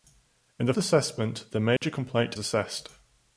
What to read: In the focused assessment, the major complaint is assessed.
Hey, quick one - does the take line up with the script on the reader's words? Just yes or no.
no